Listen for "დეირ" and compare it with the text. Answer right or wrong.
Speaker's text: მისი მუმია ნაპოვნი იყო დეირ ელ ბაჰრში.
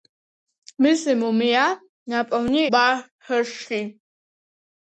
wrong